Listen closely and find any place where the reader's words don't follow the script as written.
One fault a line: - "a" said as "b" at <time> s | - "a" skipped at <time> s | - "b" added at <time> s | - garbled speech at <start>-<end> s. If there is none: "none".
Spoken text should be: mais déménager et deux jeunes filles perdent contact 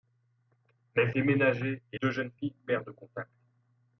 none